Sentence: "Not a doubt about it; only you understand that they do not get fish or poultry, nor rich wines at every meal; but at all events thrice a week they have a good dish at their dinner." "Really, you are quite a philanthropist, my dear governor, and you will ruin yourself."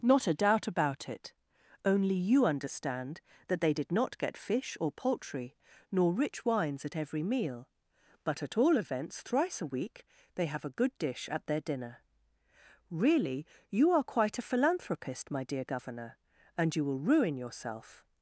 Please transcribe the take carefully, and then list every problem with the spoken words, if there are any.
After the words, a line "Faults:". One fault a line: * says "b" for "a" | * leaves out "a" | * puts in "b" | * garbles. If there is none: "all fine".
"Not a doubt about it; only you understand that they did not get fish or poultry, nor rich wines at every meal; but at all events thrice a week they have a good dish at their dinner." "Really, you are quite a philanthropist, my dear governor, and you will ruin yourself."
Faults:
* says "did" for "do"